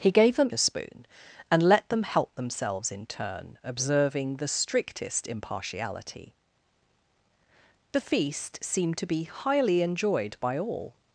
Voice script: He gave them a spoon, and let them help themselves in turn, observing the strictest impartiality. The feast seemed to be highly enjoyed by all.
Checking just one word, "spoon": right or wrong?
right